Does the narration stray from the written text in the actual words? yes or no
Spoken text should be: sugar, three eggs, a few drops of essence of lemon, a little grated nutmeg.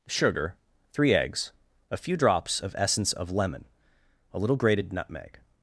no